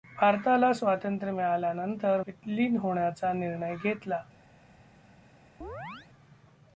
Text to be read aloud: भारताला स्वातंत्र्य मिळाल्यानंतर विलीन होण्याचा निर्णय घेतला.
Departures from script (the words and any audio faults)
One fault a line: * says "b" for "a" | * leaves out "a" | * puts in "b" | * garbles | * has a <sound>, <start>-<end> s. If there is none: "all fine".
* has a chirp, 5.6-6.1 s